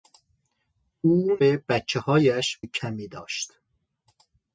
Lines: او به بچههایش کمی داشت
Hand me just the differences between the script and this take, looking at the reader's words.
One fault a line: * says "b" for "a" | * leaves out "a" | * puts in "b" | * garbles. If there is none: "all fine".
all fine